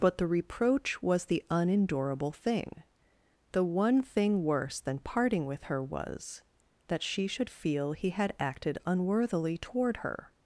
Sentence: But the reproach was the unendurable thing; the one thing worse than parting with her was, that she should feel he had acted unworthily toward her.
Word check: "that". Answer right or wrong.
right